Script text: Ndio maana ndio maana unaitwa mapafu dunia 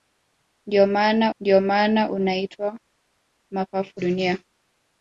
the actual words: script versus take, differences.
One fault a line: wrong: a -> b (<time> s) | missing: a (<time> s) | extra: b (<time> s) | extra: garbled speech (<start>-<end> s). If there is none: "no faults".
no faults